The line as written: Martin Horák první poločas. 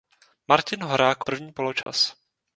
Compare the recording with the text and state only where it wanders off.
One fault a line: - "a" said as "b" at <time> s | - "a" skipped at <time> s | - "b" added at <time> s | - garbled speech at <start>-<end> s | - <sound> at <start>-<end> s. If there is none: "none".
- dropout at 1.8-1.9 s